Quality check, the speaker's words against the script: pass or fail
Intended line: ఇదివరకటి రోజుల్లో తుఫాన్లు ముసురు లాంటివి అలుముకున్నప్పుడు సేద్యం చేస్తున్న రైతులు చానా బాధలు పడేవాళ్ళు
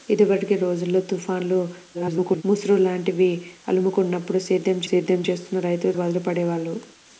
fail